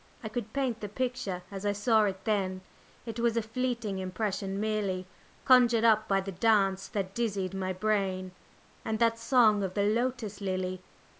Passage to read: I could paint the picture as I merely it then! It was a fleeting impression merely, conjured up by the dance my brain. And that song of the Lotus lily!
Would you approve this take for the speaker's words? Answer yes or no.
no